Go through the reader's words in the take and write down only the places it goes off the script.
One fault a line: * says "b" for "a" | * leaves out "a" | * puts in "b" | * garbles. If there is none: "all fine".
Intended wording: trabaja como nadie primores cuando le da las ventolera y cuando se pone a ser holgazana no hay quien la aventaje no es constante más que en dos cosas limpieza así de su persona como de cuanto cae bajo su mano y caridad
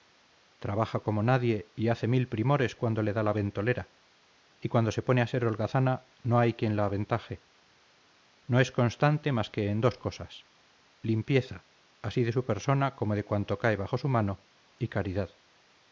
* puts in "y hace mil"
* says "la" for "las"